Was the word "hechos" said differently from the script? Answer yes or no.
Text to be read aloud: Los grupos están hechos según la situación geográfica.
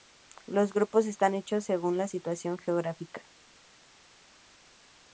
no